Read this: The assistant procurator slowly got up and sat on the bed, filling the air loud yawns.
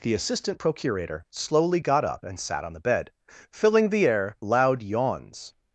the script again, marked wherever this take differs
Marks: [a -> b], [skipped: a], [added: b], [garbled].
The assistant procurator slowly got up and sat on the bed, filling the air loud yawns.